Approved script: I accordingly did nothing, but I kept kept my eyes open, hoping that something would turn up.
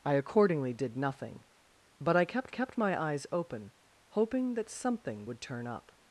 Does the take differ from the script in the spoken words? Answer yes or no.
no